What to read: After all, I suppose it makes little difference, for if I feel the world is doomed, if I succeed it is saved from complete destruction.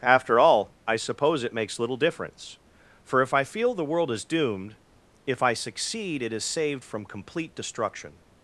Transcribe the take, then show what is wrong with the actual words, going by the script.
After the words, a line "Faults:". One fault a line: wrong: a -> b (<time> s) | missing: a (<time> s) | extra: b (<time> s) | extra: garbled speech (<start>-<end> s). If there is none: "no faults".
After all, I suppose it makes little difference, for if I feel the world is doomed, if I succeed it is saved from complete destruction.
Faults:
no faults